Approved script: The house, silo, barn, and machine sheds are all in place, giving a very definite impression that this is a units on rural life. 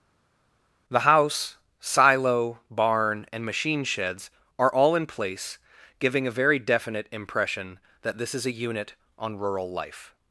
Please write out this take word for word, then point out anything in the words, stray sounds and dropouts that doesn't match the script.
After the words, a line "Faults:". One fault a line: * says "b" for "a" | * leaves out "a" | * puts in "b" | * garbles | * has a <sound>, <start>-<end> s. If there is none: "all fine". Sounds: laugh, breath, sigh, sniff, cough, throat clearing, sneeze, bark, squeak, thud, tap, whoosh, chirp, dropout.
The house, silo, barn, and machine sheds are all in place, giving a very definite impression that this is a unit on rural life.
Faults:
* says "unit" for "units"